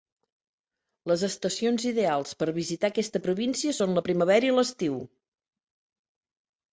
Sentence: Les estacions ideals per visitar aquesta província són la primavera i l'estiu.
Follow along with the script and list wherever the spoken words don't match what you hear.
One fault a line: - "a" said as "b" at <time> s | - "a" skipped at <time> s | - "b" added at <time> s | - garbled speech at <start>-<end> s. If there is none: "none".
none